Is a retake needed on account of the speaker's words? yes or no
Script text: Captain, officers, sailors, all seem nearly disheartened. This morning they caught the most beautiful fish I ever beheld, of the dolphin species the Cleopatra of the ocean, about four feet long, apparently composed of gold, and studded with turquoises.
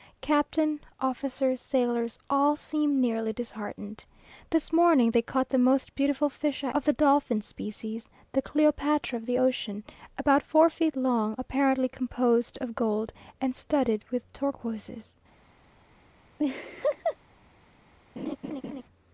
yes